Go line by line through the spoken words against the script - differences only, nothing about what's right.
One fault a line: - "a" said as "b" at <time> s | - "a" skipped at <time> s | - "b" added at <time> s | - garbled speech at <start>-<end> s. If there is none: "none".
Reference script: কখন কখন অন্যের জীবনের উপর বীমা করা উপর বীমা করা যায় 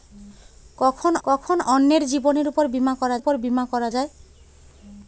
none